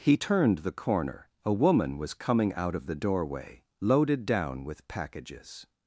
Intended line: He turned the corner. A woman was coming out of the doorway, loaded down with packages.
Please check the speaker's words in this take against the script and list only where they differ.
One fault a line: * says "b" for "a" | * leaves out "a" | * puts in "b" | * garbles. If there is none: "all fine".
all fine